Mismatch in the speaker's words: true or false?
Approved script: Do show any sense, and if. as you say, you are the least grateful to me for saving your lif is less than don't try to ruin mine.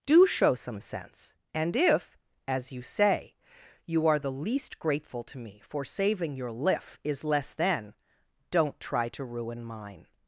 true